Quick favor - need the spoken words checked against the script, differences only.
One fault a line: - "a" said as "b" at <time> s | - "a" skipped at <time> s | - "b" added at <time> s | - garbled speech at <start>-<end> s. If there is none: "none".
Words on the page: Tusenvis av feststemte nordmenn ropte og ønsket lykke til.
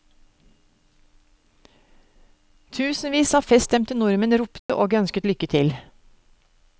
none